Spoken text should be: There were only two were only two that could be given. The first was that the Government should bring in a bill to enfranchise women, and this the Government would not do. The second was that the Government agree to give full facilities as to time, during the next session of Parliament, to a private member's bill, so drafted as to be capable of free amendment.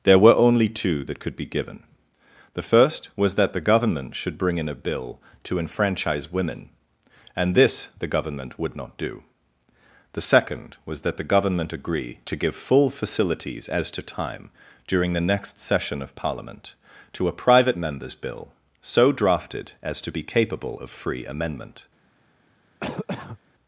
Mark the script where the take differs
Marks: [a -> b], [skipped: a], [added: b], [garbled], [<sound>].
There were only two [skipped: were only two] that could be given. The first was that the Government should bring in a bill to enfranchise women, and this the Government would not do. The second was that the Government agree to give full facilities as to time, during the next session of Parliament, to a private member's bill, so drafted as to be capable of free amendment. [cough]